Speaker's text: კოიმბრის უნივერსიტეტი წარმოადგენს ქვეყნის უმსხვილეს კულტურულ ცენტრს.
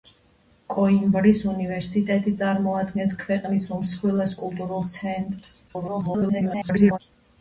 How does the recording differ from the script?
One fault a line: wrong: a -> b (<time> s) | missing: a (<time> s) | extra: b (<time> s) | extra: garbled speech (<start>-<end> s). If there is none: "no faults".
extra: garbled speech (5.7-7.0 s)